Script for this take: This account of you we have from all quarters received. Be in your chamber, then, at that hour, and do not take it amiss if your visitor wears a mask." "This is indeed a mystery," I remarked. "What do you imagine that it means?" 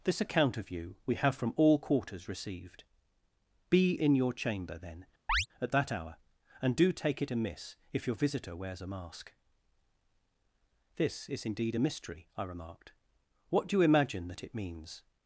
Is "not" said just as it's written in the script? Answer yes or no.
no